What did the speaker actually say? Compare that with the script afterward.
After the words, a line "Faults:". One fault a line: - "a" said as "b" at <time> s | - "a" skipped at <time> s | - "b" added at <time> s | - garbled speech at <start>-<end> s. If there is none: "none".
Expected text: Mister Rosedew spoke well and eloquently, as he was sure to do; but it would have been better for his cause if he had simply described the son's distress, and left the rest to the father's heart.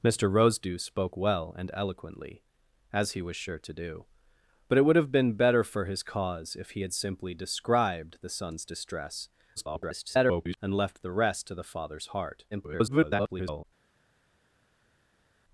Mister Rosedew spoke well and eloquently, as he was sure to do; but it would have been better for his cause if he had simply described the son's distress, [garbled] and left the rest to the father's heart. [garbled]
Faults:
- garbled speech at 9.6-10.6 s
- garbled speech at 12.5-13.6 s